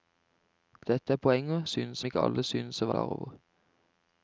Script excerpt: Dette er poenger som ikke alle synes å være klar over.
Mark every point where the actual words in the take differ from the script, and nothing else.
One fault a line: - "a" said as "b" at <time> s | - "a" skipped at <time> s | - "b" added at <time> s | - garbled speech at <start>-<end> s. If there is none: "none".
- "som" said as "synes" at 1.7 s
- "være" skipped at 2.9 s